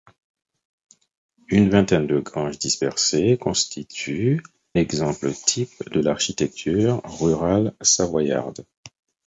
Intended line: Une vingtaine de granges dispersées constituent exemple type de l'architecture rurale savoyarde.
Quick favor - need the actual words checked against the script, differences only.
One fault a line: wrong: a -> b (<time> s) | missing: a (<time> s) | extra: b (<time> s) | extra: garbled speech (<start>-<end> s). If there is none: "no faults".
no faults